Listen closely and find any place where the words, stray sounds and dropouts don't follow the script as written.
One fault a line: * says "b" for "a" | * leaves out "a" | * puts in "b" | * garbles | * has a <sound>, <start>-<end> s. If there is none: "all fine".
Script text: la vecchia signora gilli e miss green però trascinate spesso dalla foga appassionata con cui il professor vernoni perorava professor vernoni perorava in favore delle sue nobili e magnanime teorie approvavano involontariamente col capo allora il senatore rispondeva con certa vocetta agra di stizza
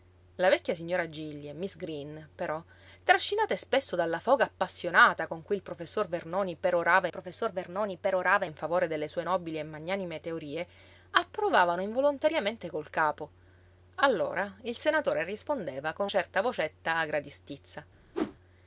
* has a whoosh, 18.1-18.4 s